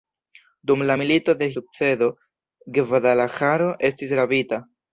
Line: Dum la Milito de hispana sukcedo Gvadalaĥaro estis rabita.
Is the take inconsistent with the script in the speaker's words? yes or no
yes